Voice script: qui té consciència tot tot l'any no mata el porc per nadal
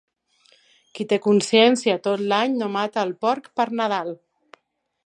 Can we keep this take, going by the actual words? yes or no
no